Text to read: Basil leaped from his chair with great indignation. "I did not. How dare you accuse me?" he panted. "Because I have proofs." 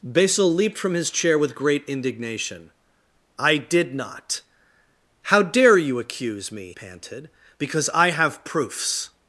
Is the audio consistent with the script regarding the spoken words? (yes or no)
no